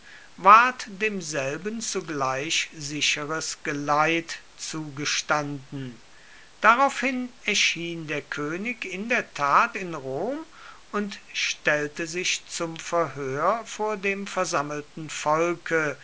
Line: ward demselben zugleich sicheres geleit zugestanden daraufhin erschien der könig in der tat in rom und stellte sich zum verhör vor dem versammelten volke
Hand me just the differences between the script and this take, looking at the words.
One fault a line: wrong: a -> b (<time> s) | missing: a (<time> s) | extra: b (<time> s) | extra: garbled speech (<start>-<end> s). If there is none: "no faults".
no faults